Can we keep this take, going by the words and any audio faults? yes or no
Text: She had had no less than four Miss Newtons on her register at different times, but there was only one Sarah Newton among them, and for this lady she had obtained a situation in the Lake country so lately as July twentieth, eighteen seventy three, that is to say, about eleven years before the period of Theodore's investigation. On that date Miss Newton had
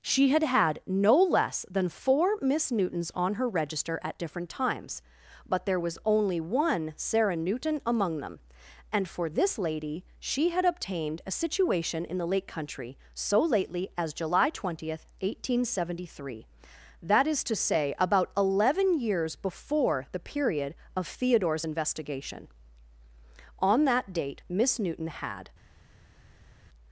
yes